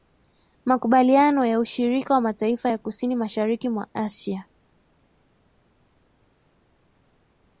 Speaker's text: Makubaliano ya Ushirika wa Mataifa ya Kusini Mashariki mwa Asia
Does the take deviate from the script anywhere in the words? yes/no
no